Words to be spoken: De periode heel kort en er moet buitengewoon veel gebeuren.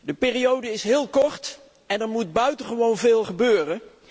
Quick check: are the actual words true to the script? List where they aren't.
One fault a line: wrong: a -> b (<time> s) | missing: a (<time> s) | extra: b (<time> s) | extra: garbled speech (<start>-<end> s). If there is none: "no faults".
extra: is (0.7 s)